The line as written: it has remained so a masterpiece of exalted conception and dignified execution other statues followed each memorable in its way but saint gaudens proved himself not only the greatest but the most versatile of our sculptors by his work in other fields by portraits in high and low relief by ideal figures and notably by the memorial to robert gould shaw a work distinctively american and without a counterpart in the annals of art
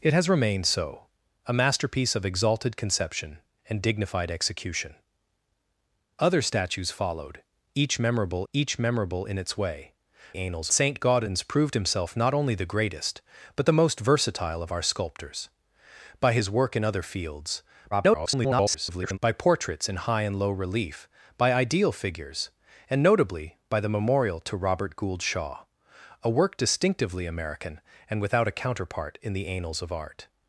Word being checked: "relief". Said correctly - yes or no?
yes